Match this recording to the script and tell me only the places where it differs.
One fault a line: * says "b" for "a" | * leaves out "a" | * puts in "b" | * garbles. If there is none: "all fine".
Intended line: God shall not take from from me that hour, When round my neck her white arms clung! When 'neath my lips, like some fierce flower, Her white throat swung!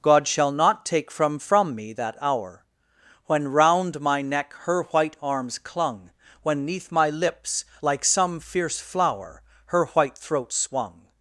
all fine